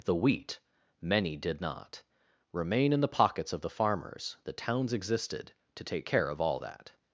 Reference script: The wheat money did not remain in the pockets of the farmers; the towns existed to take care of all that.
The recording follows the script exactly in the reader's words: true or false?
false